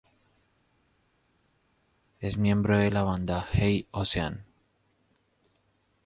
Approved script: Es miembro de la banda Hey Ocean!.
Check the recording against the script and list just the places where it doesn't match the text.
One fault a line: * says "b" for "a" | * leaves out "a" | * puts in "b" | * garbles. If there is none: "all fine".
all fine